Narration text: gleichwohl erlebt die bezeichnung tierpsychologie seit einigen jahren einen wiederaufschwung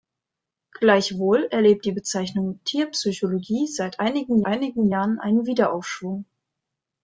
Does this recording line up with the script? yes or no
no